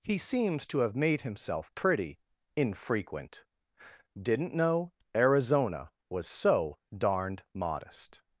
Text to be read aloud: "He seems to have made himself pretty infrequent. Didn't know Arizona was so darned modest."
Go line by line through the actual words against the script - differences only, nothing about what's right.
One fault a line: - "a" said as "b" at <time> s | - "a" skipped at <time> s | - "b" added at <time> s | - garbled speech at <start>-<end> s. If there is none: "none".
none